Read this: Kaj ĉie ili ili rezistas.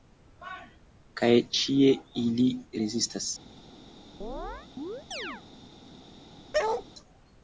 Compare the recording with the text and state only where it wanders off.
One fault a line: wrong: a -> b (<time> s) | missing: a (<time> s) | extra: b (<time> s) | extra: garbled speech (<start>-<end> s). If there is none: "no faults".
missing: ili (2.5 s)